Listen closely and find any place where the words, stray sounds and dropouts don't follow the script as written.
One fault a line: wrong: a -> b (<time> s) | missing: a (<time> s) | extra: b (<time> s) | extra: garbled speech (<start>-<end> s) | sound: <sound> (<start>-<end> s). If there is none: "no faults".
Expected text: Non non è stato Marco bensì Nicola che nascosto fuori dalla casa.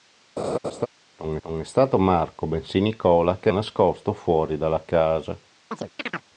sound: laugh (0.4-0.9 s)
sound: chirp (5.7-6.3 s)